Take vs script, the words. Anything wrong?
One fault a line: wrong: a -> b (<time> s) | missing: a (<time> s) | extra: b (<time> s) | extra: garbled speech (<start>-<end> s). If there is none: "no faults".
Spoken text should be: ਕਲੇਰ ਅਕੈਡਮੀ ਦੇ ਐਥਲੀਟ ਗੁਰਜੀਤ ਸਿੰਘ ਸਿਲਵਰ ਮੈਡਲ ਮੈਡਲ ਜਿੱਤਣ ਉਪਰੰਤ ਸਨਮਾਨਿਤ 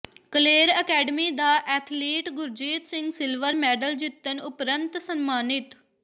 wrong: ਦੇ -> ਦਾ (1.3 s)
missing: ਮੈਡਲ (4.0 s)